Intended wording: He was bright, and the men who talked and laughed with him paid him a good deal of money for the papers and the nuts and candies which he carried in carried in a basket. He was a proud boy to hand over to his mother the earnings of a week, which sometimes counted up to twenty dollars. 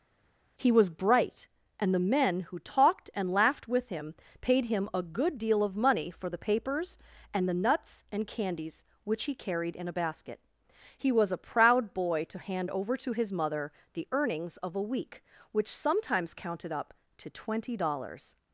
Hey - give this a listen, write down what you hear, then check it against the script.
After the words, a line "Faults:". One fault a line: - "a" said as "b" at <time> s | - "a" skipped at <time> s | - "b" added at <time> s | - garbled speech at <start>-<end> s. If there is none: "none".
He was bright, and the men who talked and laughed with him paid him a good deal of money for the papers and the nuts and candies which he carried in a basket. He was a proud boy to hand over to his mother the earnings of a week, which sometimes counted up to twenty dollars.
Faults:
- "carried in" skipped at 9.9 s